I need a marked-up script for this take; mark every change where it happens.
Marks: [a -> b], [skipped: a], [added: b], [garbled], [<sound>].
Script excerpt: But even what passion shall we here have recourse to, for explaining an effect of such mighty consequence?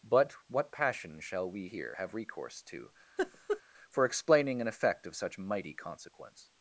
But [skipped: even] what passion shall we here have recourse to, [laugh] for explaining an effect of such mighty consequence?